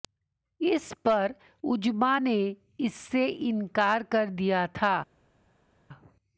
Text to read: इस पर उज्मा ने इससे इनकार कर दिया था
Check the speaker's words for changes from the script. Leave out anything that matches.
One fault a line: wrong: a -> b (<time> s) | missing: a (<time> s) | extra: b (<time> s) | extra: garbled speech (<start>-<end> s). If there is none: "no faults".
no faults